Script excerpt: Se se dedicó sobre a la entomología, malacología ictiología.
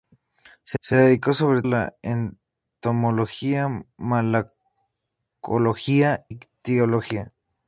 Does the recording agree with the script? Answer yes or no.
yes